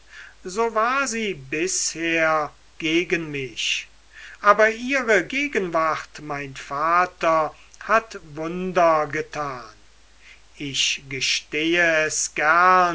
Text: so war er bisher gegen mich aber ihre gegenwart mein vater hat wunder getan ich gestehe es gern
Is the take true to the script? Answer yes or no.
no